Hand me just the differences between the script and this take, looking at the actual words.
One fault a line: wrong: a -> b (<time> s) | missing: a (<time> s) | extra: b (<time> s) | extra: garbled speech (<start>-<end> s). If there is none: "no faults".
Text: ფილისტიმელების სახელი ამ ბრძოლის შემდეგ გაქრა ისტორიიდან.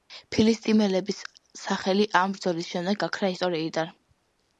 no faults